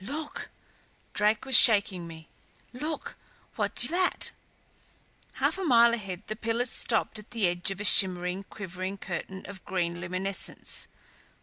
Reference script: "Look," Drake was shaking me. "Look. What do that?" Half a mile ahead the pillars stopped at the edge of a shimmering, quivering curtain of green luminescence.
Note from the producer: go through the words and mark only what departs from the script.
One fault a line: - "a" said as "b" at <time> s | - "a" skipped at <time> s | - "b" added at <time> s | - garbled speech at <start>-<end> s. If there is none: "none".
none